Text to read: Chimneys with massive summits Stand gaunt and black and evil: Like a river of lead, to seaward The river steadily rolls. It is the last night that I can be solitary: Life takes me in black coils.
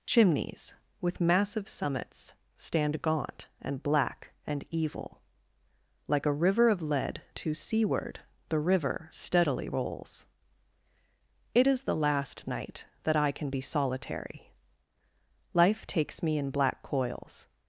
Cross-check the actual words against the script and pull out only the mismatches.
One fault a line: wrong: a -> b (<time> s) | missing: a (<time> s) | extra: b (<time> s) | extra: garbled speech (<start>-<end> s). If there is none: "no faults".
no faults